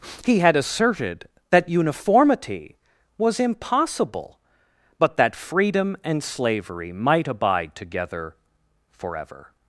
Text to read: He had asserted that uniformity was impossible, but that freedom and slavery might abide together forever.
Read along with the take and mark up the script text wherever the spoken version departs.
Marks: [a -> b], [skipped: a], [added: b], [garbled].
He had asserted that uniformity was impossible, but that freedom and slavery might abide together forever.